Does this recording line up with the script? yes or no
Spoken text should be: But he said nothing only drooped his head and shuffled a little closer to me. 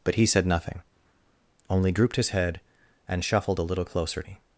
no